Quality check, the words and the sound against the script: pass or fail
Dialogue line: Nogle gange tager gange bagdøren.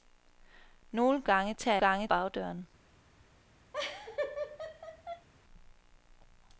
fail